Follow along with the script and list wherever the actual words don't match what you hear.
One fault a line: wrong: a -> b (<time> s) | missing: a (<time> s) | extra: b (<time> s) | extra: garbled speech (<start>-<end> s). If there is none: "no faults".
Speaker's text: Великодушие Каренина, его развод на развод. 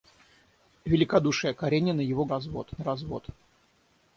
no faults